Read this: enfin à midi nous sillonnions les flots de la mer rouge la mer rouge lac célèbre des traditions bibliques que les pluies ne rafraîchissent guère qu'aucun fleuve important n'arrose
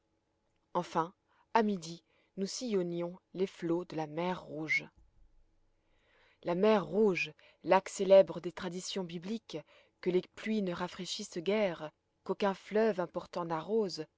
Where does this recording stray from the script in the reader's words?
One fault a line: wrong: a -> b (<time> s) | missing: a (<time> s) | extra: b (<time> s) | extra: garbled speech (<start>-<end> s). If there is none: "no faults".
no faults